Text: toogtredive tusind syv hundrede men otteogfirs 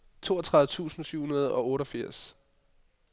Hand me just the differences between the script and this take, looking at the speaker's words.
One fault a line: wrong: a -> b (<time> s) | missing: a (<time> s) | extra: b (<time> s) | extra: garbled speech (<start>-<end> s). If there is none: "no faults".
wrong: men -> og (1.5 s)